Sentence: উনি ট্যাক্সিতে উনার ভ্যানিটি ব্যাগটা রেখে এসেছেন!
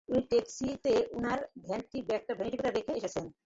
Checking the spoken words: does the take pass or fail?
pass